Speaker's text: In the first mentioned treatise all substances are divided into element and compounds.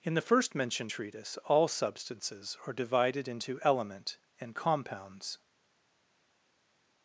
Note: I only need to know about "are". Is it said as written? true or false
true